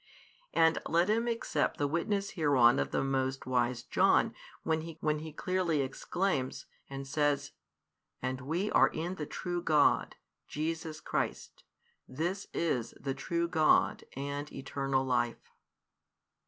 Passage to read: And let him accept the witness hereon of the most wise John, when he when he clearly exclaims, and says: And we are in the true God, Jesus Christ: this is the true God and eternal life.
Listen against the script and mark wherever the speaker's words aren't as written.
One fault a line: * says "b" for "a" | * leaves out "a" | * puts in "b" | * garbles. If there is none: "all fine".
all fine